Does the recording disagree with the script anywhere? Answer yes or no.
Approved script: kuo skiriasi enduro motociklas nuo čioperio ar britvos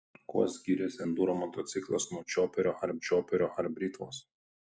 yes